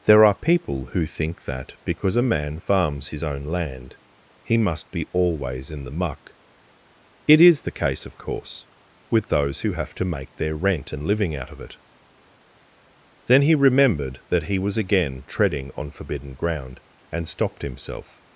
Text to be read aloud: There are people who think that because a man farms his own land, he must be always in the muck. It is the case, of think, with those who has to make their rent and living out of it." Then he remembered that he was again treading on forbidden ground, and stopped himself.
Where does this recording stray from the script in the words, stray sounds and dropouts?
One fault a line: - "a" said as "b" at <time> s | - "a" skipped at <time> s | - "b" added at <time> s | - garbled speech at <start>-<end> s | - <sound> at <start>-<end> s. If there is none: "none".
- "think" said as "course" at 8.2 s
- "has" said as "have" at 9.7 s